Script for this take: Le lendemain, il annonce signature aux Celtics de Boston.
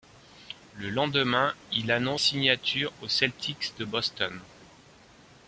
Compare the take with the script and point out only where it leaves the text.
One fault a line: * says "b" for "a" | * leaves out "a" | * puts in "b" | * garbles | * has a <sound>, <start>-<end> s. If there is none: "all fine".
all fine